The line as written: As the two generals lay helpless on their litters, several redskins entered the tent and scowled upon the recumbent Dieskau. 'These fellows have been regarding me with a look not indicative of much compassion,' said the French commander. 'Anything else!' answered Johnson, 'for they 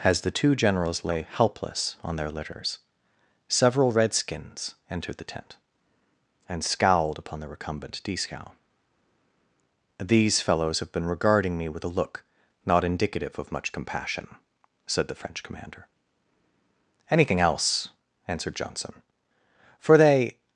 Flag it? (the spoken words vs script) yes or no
no